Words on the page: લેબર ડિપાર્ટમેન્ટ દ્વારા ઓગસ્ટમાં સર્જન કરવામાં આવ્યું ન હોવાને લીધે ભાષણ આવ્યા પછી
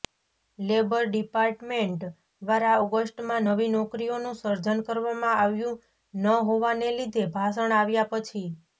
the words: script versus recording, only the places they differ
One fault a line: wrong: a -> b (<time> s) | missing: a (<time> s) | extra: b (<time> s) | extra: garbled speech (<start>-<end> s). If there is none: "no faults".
extra: નવી નોકરીઓનું (3.5 s)